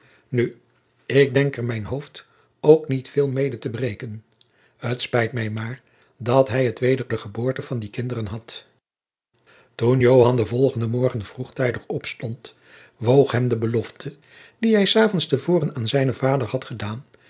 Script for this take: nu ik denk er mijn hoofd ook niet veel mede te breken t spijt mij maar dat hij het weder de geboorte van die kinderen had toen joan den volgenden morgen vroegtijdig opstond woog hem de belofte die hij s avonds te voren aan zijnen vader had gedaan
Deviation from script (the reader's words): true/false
false